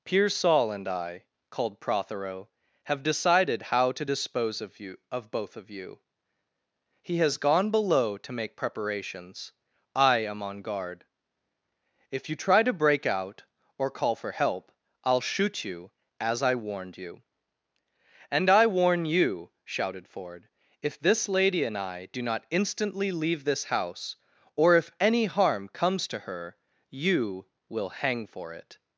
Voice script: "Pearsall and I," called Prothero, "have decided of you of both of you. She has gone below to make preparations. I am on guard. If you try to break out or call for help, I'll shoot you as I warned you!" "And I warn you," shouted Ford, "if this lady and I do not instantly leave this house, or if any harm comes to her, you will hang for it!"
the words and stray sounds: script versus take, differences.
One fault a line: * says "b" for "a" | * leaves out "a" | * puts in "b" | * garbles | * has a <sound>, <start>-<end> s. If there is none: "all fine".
* puts in "how to dispose"
* says "He" for "She"